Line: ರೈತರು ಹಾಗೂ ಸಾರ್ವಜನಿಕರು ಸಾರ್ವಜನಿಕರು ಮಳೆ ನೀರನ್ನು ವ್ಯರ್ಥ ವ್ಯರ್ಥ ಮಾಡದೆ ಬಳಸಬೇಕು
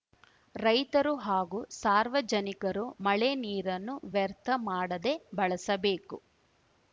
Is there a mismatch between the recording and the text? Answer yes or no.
yes